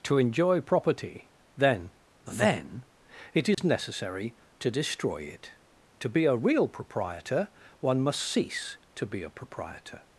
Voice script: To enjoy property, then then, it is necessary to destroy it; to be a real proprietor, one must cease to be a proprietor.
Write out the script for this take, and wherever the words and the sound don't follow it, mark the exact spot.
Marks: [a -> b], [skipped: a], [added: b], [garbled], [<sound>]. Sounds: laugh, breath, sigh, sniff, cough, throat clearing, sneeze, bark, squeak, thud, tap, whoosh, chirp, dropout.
To enjoy property, then then, it is [dropout] necessary to destroy it; to be a real proprietor, one must cease to be a proprietor.